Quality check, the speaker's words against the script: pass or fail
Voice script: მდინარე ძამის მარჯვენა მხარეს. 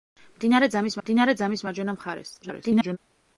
fail